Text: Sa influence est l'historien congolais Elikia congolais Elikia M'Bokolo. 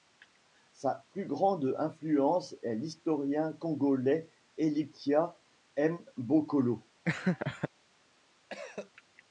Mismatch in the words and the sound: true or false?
true